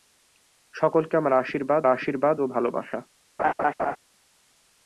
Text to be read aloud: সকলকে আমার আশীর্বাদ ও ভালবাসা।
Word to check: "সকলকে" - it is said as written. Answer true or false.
true